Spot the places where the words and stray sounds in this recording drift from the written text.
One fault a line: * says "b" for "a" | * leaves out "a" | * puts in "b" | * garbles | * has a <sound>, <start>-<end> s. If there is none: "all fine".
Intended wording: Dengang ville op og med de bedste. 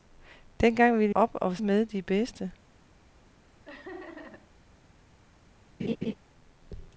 * has a laugh, 3.6-4.5 s
* has a laugh, 5.8-6.1 s